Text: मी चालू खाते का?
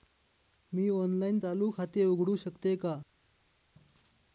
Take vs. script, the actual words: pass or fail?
fail